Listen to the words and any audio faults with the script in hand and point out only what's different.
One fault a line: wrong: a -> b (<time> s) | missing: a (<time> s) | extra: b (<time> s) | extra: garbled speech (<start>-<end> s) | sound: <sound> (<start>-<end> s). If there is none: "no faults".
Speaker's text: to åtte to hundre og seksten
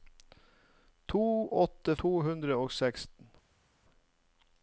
no faults